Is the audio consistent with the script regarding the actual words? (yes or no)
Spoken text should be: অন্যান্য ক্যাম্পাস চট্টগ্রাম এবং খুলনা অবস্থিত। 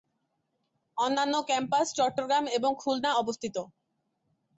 yes